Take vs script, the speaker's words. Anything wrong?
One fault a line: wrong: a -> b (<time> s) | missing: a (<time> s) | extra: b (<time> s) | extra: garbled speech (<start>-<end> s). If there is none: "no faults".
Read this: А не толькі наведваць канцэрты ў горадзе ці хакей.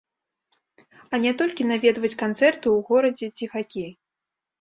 no faults